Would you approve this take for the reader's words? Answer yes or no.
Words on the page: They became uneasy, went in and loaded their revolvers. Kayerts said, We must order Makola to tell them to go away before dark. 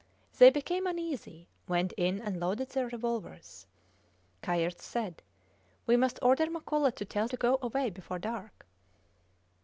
no